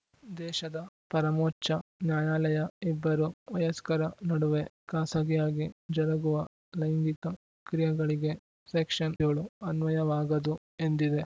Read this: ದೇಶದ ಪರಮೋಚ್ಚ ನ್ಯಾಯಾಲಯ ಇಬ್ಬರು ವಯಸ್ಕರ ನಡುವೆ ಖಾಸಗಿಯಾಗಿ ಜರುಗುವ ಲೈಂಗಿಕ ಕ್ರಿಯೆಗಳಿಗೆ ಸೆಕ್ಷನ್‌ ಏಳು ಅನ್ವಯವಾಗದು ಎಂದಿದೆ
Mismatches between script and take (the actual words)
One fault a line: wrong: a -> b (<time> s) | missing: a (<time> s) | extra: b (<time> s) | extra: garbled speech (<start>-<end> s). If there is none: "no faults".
no faults